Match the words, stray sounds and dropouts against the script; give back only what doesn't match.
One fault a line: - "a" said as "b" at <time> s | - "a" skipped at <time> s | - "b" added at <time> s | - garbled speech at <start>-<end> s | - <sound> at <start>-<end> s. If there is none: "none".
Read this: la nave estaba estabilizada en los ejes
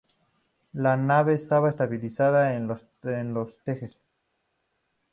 none